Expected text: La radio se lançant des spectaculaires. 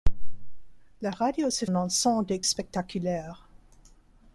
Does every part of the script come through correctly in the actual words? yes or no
yes